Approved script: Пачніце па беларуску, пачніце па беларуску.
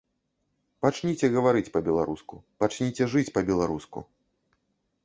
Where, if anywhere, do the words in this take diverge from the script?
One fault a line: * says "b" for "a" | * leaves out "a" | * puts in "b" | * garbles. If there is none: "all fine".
* puts in "гаварыць"
* puts in "жыць"